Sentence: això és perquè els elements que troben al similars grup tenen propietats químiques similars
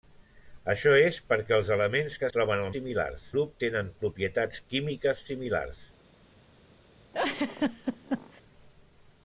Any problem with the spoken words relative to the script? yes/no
no